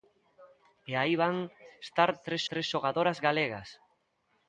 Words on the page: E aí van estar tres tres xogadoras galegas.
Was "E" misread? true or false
false